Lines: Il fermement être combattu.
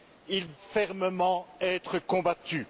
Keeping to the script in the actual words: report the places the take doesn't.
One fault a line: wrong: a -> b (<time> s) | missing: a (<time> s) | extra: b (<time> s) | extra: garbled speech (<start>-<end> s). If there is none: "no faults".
no faults